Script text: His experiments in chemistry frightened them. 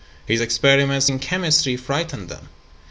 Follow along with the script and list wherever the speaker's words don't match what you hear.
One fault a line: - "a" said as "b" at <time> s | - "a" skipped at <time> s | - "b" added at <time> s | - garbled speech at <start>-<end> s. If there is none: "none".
none